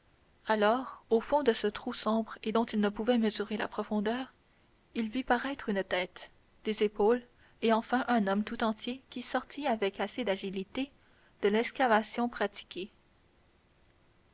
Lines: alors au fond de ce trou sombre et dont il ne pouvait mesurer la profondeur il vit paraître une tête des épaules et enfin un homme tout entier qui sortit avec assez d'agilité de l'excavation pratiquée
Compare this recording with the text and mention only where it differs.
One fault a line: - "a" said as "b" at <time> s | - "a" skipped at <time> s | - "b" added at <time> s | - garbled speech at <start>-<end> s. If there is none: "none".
none